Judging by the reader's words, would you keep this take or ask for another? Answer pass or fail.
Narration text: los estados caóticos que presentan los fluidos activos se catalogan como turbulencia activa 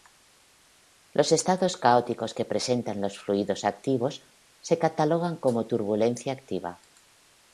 pass